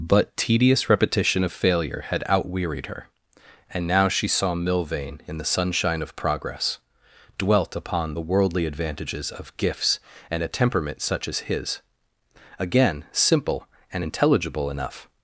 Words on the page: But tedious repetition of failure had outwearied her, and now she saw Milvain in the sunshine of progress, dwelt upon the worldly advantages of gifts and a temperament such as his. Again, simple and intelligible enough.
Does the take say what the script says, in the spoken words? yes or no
yes